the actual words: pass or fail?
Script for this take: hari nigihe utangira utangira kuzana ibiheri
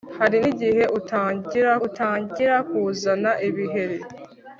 pass